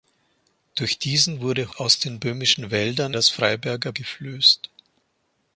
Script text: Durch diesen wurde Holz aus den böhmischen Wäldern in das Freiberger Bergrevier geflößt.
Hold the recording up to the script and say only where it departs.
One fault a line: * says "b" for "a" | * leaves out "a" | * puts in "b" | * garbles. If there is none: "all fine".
* leaves out "Holz"
* leaves out "in"
* leaves out "Bergrevier"